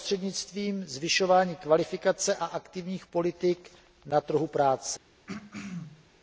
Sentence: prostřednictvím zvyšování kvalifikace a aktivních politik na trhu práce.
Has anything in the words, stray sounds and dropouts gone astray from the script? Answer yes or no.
yes